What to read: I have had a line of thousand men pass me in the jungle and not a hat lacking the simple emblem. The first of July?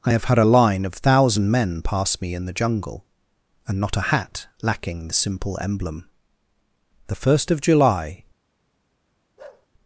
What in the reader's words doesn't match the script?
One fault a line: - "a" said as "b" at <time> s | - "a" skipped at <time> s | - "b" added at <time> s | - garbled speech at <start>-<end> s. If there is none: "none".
none